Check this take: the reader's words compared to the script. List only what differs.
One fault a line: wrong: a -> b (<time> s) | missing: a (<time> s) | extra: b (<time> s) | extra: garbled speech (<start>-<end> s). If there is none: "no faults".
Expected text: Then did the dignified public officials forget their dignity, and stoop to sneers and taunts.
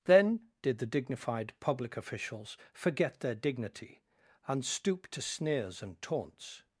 no faults